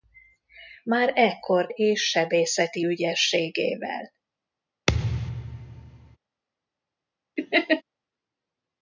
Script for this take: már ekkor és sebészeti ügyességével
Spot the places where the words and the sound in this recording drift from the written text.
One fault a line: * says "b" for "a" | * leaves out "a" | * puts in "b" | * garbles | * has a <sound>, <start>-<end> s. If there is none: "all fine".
* has a thud, 4.9-6.2 s
* has a laugh, 7.4-7.8 s